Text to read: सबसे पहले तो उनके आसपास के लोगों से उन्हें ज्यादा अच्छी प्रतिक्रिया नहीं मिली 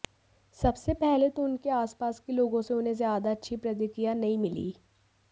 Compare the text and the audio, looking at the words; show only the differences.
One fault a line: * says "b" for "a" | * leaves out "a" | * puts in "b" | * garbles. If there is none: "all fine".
all fine